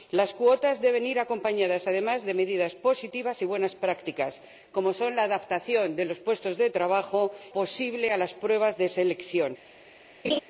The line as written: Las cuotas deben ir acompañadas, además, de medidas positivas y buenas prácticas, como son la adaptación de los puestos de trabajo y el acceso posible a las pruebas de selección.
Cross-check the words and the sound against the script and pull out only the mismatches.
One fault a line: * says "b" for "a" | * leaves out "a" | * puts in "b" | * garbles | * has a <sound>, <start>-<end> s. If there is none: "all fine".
* leaves out "y el acceso"
* has a laugh, 10.2-10.4 s